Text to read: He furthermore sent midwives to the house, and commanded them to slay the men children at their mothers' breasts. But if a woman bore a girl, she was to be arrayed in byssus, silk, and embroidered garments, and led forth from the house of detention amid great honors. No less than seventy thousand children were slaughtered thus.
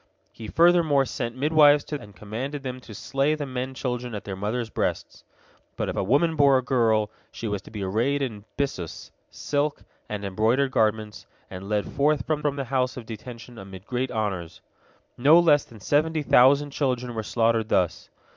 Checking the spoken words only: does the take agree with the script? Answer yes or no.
no